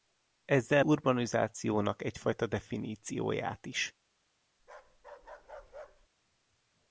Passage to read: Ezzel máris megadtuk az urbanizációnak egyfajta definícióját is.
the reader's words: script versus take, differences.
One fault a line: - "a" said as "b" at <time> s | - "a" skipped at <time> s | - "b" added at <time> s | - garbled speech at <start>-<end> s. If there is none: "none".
- "máris megadtuk az" skipped at 0.8 s